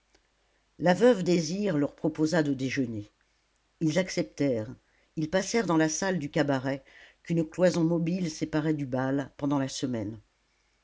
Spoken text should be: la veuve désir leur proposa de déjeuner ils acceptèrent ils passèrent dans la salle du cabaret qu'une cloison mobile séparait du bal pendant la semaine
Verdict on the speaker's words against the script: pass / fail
pass